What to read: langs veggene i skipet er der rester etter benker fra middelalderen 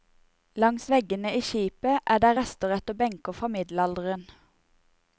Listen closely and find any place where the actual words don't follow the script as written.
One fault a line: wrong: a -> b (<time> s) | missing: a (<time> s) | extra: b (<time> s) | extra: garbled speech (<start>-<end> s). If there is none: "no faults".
no faults